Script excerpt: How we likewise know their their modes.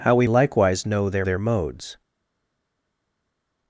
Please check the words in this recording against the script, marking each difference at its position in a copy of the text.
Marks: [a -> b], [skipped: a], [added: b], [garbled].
How we likewise know their their modes.